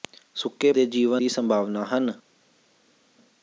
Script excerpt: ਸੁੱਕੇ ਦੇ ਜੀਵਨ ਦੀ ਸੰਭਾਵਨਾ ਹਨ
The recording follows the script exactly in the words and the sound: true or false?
true